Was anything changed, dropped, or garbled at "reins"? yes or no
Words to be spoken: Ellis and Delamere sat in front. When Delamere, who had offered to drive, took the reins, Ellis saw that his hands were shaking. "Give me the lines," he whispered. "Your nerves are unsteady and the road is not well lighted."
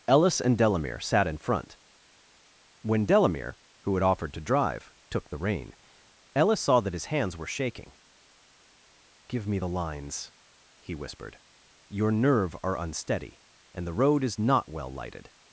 yes